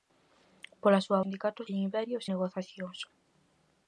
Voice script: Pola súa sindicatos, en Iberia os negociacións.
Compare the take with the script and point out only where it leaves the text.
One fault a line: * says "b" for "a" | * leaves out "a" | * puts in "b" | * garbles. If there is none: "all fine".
all fine